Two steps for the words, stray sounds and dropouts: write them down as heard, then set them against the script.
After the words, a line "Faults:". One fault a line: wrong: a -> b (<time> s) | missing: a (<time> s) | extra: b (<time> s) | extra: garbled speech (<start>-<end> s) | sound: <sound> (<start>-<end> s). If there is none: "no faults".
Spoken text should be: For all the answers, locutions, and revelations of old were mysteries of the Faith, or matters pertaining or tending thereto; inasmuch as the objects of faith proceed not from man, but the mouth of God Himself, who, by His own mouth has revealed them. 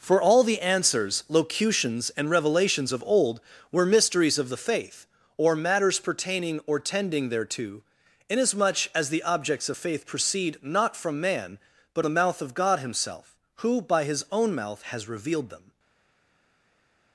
For all the answers, locutions, and revelations of old were mysteries of the Faith, or matters pertaining or tending thereto; inasmuch as the objects of faith proceed not from man, but the mouth of God Himself, who, by His own mouth has revealed them.
Faults:
no faults